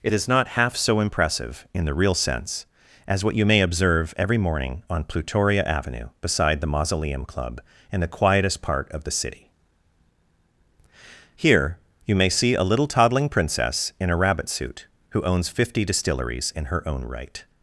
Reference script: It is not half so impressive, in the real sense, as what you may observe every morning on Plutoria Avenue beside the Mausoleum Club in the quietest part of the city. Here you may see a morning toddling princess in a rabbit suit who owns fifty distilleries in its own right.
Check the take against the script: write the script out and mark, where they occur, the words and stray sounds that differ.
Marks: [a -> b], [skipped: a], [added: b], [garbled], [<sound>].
It is not half so impressive, in the real sense, as what you may observe every morning on Plutoria Avenue beside the Mausoleum Club in the quietest part of the city. Here you may see a [morning -> little] toddling princess in a rabbit suit who owns fifty distilleries in [its -> her] own right.